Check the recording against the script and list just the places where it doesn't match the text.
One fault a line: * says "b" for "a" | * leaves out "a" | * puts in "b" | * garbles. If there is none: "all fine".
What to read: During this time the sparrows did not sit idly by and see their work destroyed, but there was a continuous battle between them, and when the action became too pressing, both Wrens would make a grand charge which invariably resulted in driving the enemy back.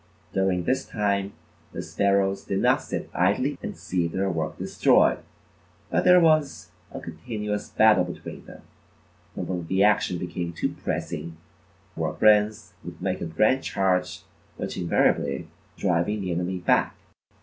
* leaves out "by"
* says "work" for "both"
* leaves out "resulted in"